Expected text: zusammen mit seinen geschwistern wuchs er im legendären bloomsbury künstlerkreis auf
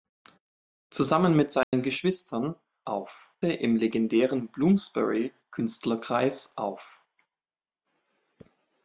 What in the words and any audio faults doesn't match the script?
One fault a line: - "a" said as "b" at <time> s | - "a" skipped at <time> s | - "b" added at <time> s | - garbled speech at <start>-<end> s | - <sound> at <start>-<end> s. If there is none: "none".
- dropout at 1.6-1.7 s
- "wuchs" said as "auf" at 2.9 s